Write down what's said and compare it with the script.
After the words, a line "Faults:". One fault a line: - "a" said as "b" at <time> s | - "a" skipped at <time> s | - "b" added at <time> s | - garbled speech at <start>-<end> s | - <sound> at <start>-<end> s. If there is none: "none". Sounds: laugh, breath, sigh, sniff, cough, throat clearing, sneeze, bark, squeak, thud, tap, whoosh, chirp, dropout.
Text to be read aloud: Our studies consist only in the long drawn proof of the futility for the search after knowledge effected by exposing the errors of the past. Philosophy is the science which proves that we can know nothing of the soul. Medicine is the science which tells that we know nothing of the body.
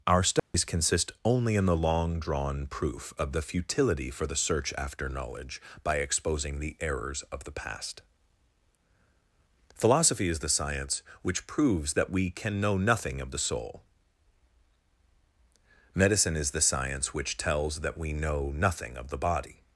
Our studies consist only in the long drawn proof of the futility for the search after knowledge by exposing the errors of the past. Philosophy is the science which proves that we can know nothing of the soul. Medicine is the science which tells that we know nothing of the body.
Faults:
- dropout at 0.4-0.5 s
- "effected" skipped at 5.6 s